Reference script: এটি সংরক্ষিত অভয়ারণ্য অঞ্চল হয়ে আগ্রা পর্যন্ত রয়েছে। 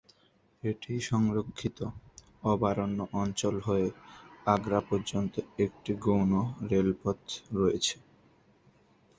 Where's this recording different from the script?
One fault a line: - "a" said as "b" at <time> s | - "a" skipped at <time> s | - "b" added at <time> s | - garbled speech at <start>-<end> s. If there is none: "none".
- "একটি গৌণ রেলপথ" added at 5.6 s